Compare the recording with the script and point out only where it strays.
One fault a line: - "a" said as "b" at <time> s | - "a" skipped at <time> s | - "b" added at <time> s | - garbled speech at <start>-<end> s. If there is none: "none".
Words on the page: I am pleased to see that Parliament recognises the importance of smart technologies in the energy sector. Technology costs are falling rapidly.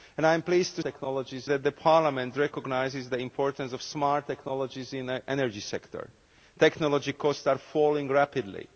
- "see" said as "technologies" at 0.8 s